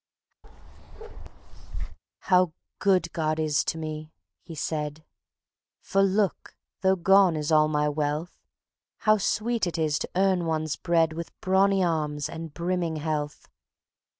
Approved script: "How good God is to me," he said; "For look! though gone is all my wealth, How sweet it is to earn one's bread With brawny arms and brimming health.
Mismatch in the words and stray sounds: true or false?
true